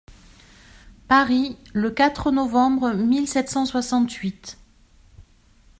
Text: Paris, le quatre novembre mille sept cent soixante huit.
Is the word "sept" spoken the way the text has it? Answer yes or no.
yes